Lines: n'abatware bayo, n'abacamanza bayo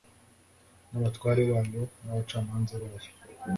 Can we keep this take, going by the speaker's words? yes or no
yes